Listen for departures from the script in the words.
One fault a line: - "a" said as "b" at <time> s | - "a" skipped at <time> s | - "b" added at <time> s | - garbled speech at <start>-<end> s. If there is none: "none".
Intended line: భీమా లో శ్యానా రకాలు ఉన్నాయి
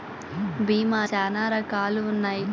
- "లో" skipped at 1.0 s